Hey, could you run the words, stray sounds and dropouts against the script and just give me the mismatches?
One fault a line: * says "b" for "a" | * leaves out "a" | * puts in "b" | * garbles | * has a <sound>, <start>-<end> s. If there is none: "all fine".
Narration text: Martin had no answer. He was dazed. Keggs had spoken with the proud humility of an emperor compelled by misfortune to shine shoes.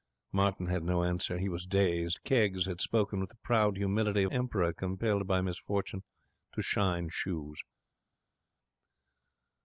* leaves out "an"